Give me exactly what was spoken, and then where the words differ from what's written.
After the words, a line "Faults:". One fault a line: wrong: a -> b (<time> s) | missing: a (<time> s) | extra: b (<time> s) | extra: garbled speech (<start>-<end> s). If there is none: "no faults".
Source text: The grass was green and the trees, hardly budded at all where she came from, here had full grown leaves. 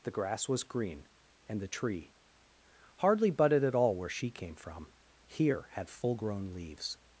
The grass was green and the tree, hardly budded at all where she came from, here had full grown leaves.
Faults:
wrong: trees -> tree (1.7 s)